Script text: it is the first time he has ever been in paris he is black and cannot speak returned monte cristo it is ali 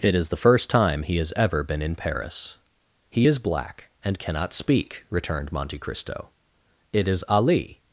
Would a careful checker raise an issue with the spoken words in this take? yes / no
no